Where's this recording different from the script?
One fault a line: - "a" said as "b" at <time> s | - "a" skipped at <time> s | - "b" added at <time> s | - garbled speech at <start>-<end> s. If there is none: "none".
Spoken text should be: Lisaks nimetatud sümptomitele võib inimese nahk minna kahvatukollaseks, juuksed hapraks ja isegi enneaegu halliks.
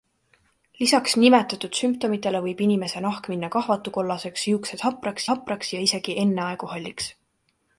- "hapraks" added at 5.3 s